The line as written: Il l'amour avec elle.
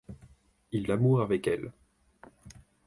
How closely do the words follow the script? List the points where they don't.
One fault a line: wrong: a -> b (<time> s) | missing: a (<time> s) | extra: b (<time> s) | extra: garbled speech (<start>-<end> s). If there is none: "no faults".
no faults